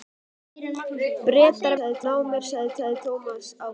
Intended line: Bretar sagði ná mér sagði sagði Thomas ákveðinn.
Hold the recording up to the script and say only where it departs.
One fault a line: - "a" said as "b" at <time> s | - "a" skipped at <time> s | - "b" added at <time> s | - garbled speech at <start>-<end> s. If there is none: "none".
none